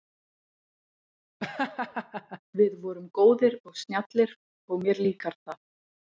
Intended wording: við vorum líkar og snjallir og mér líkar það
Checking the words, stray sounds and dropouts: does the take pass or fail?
fail